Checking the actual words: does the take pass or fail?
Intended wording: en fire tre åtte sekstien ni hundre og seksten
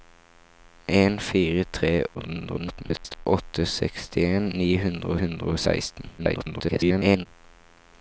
fail